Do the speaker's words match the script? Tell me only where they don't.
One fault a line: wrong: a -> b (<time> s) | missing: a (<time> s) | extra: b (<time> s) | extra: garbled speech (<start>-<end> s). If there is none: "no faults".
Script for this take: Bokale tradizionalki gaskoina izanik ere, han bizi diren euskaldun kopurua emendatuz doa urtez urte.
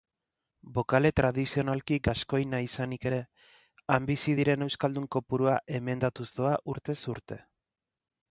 no faults